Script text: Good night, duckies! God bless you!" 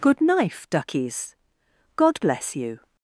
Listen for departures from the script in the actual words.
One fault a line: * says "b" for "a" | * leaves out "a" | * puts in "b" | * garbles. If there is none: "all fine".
* says "knife" for "night"